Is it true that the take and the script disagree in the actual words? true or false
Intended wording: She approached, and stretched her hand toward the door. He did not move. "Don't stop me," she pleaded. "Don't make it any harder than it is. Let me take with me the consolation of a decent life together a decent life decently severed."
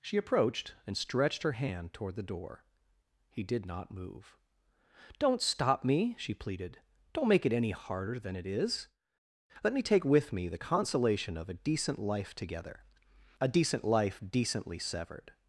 false